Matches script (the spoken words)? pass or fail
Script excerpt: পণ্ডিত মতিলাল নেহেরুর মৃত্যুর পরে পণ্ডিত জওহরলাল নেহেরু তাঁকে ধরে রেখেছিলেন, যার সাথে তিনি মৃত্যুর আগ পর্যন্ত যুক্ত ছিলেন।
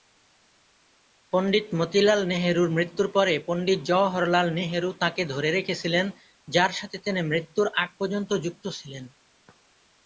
pass